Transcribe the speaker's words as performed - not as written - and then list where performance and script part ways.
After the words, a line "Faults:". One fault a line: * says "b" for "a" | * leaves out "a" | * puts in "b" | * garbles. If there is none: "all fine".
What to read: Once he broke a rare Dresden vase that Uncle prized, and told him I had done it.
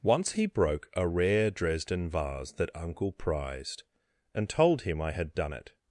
Once he broke a rare Dresden vase that Uncle prized, and told him I had done it.
Faults:
all fine